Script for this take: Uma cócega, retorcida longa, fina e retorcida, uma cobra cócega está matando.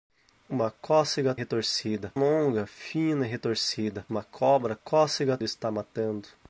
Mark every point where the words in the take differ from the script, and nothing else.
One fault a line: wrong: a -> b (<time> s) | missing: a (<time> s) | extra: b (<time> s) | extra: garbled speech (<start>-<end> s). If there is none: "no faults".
no faults